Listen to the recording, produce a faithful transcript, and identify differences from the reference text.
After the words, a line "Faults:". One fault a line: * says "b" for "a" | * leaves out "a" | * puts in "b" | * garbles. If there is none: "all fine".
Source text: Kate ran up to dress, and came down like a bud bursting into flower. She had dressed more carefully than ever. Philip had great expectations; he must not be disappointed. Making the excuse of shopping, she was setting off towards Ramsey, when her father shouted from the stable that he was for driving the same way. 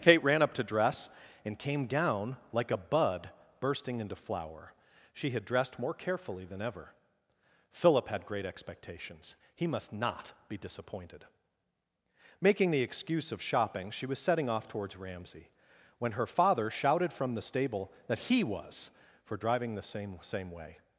Kate ran up to dress, and came down like a bud bursting into flower. She had dressed more carefully than ever. Philip had great expectations; he must not be disappointed. Making the excuse of shopping, she was setting off towards Ramsey, when her father shouted from the stable that he was for driving the same same way.
Faults:
* puts in "same"